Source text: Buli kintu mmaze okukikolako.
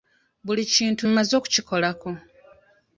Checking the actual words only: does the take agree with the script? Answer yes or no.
yes